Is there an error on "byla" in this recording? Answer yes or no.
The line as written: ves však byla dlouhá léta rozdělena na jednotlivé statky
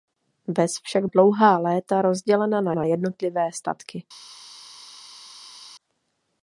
yes